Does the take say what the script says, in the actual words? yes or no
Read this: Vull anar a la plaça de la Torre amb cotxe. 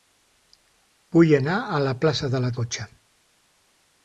no